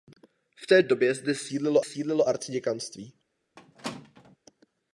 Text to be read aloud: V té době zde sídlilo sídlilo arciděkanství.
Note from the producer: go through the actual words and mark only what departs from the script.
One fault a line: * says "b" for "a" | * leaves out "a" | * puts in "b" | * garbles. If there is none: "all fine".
all fine